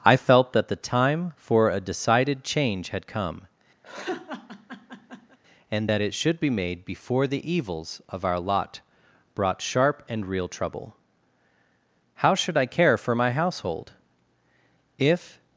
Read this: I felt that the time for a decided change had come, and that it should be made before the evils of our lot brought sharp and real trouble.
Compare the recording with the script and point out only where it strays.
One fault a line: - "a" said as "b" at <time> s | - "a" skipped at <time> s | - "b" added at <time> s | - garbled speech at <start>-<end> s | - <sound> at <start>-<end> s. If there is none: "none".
- laugh at 3.8-5.4 s
- "How should I care for my household If" added at 12.2 s